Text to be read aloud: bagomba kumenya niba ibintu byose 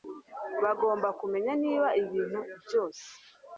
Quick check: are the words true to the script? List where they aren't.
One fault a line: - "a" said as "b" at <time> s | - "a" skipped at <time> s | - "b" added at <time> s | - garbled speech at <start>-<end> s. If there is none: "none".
none